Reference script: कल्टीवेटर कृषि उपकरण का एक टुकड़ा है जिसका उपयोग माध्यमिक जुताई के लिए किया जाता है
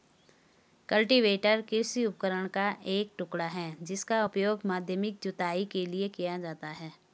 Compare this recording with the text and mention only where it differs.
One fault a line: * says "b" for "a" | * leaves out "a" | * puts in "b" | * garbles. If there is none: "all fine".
all fine